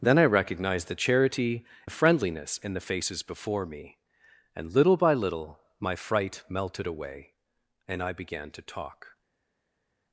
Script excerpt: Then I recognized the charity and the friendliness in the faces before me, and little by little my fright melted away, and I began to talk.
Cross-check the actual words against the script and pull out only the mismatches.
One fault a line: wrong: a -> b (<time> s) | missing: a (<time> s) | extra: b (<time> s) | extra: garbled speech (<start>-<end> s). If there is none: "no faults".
missing: and (1.6 s)